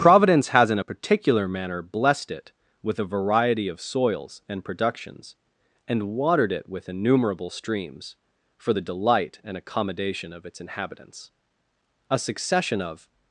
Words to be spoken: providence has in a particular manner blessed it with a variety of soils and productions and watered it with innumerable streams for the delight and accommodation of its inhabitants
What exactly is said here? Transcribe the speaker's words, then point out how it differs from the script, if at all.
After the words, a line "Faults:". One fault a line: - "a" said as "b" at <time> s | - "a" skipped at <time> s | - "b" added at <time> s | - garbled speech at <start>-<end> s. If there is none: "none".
providence has in a particular manner blessed it with a variety of soils and productions and watered it with innumerable streams for the delight and accommodation of its inhabitants a succession of
Faults:
- "a succession of" added at 12.1 s